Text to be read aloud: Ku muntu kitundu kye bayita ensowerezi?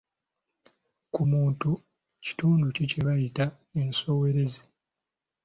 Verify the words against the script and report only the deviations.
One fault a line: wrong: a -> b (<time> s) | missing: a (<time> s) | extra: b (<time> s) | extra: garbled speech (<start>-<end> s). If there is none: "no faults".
extra: ki (2.7 s)